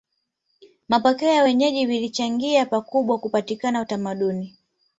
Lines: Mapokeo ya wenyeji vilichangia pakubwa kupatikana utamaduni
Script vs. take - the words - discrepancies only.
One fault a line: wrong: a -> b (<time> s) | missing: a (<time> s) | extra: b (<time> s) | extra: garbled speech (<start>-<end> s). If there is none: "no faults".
no faults